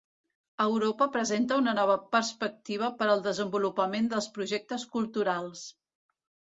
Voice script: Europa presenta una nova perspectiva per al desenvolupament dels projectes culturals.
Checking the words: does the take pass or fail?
pass